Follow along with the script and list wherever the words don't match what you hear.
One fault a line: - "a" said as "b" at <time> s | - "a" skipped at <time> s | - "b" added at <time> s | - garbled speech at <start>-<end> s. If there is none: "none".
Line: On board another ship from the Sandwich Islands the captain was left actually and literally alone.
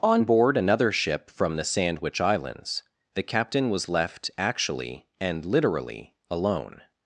none